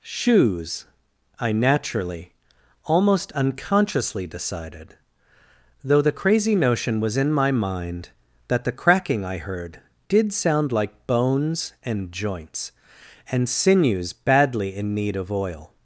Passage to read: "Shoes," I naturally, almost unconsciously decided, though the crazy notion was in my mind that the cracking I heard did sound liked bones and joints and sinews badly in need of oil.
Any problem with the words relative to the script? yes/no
yes